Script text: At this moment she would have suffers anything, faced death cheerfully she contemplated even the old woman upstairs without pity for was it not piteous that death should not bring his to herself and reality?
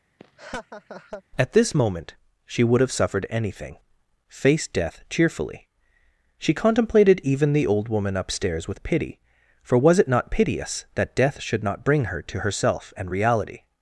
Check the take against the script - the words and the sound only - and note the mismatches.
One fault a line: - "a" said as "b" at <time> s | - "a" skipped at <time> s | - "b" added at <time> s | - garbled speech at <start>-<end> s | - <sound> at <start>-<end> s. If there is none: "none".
- laugh at 0.2-1.2 s
- "suffers" said as "suffered" at 2.9 s
- "without" said as "with" at 8.7 s
- "his" said as "her" at 12.1 s